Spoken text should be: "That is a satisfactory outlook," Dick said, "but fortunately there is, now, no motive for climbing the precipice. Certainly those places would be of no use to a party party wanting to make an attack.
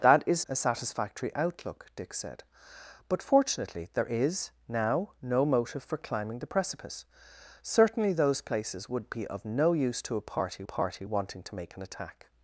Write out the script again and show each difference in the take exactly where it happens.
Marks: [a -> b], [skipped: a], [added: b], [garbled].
"That is a satisfactory outlook," Dick said, "but fortunately there is, now, no motive for climbing the precipice. Certainly those places would be of no use to a party party wanting to make an attack.